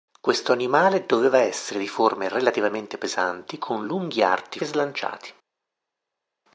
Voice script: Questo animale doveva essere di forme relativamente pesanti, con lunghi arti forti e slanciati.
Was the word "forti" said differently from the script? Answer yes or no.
yes